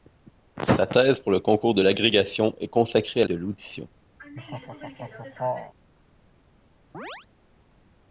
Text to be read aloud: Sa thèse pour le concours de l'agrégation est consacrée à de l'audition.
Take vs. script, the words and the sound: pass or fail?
fail